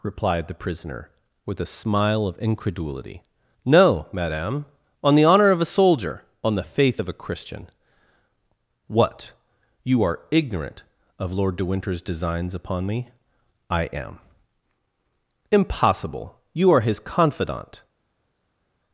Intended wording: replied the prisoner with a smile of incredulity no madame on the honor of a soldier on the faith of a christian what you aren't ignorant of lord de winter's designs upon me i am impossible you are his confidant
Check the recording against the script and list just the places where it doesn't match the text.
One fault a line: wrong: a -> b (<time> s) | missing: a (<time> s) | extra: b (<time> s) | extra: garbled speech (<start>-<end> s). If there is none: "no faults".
wrong: aren't -> are (10.0 s)